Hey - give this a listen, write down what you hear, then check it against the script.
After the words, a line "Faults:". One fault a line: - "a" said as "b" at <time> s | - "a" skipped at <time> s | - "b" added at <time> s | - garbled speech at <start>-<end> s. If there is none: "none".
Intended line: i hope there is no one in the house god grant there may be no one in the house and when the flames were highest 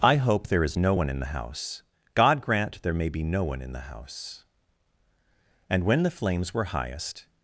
i hope there is no one in the house god grant there may be no one in the house and when the flames were highest
Faults:
none